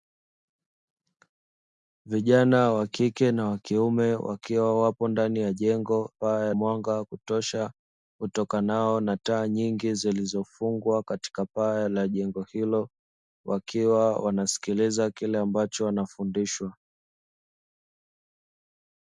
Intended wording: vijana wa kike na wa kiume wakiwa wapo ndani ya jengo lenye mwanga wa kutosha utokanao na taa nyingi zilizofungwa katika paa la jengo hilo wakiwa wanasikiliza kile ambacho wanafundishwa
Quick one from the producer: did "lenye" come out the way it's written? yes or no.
no